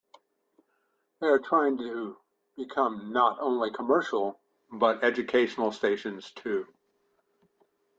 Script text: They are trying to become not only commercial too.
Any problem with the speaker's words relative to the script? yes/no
yes